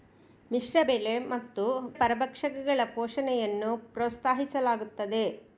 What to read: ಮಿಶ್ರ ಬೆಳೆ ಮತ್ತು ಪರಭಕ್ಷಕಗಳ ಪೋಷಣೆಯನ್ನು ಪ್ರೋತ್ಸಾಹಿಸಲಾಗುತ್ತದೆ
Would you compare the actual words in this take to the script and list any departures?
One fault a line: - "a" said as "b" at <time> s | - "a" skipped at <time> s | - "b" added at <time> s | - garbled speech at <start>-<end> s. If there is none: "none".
none